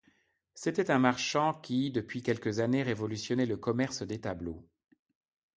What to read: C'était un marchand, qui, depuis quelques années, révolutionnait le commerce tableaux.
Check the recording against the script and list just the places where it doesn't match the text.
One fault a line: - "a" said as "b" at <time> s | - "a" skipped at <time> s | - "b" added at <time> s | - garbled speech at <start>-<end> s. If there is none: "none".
- "des" added at 4.0 s